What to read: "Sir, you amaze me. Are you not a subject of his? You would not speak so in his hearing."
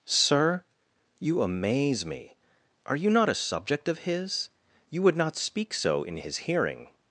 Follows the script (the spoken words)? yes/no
yes